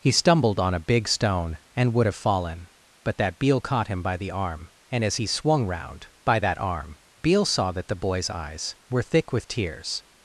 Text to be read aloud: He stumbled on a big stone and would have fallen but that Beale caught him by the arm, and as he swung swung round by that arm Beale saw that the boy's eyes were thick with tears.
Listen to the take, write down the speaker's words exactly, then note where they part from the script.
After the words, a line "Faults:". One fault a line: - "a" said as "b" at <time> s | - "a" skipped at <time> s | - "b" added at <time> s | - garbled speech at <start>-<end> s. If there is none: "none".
He stumbled on a big stone and would have fallen but that Beale caught him by the arm, and as he swung round by that arm Beale saw that the boy's eyes were thick with tears.
Faults:
- "swung" skipped at 5.7 s